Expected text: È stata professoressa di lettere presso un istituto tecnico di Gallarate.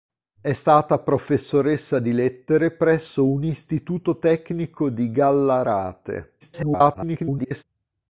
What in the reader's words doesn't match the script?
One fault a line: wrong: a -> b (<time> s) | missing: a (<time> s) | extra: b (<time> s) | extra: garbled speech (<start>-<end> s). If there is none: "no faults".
extra: garbled speech (6.4-7.6 s)